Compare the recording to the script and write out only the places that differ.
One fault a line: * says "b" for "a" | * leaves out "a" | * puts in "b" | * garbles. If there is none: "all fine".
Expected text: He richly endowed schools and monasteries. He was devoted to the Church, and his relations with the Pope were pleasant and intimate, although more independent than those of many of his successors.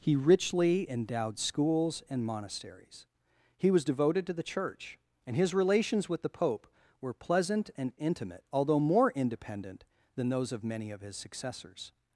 all fine